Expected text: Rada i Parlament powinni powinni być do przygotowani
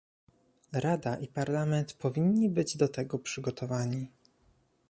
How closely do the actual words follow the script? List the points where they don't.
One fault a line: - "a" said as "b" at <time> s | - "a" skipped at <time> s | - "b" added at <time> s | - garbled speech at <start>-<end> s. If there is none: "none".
- "powinni" skipped at 2.5 s
- "tego" added at 2.9 s